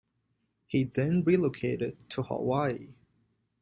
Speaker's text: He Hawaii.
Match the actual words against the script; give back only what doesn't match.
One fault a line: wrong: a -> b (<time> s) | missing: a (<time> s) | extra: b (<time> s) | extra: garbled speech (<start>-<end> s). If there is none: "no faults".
extra: then relocated to (0.8 s)